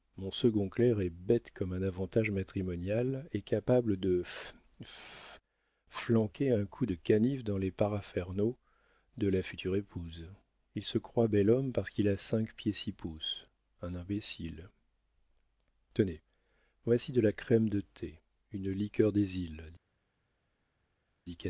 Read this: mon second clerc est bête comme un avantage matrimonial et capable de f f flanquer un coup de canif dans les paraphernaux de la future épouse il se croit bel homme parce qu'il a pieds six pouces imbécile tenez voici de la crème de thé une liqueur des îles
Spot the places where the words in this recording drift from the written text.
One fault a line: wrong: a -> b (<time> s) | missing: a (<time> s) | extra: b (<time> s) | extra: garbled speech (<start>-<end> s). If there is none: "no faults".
extra: cinq (12.2 s)
extra: un (13.8 s)